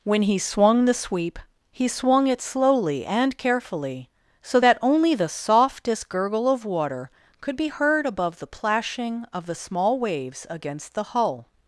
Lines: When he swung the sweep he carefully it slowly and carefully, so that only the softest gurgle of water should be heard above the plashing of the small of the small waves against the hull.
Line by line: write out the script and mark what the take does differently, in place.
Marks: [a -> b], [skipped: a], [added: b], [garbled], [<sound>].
When he swung the sweep he [carefully -> swung] it slowly and carefully, so that only the softest gurgle of water [should -> could] be heard above the plashing of the small [skipped: of the small] waves against the hull.